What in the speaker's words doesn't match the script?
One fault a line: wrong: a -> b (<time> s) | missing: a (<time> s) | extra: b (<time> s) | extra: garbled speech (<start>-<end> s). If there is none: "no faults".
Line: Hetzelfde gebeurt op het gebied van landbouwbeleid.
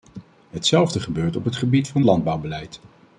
no faults